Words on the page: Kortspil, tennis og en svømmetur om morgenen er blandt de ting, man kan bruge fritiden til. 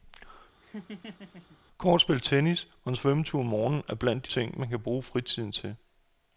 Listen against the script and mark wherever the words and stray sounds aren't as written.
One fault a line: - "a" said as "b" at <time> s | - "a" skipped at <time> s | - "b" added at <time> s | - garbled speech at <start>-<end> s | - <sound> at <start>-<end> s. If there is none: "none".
- laugh at 0.6-1.6 s